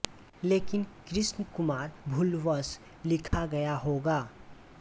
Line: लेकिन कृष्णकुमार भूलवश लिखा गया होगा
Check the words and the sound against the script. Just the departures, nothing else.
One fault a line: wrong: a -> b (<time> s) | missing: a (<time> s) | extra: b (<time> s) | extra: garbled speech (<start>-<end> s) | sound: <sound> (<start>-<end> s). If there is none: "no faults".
sound: dropout (3.3-3.3 s)